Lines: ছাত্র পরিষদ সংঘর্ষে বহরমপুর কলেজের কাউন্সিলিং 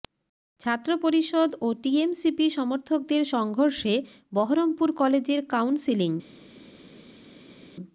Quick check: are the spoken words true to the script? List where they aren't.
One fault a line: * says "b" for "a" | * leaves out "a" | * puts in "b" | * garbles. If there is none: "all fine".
* puts in "ও টিএমসিপি সমর্থকদের"